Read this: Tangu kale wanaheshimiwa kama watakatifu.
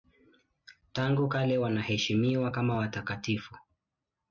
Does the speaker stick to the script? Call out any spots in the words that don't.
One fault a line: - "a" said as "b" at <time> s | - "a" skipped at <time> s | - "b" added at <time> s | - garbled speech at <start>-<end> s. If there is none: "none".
none